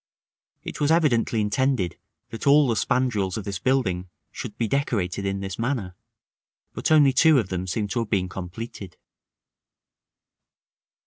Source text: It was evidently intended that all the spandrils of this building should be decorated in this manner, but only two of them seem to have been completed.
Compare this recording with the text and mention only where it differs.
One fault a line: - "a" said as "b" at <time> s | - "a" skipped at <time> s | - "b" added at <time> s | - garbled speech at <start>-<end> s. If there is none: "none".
none